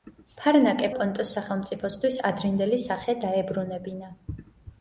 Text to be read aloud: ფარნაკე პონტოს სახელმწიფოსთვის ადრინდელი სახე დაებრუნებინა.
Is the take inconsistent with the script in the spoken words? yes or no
no